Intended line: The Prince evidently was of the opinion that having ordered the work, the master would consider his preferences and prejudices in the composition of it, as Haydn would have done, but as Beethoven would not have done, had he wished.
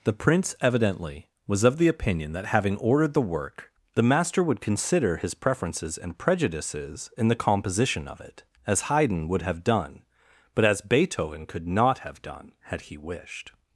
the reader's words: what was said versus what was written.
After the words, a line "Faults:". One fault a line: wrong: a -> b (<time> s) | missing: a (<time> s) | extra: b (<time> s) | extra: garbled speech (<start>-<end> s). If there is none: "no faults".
The Prince evidently was of the opinion that having ordered the work, the master would consider his preferences and prejudices in the composition of it, as Haydn would have done, but as Beethoven could not have done, had he wished.
Faults:
wrong: would -> could (11.4 s)